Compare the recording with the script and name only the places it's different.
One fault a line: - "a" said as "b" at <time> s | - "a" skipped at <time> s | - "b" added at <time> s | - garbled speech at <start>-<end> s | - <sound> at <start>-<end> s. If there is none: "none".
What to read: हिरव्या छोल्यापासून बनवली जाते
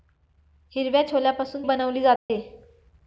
- dropout at 2.2-2.3 s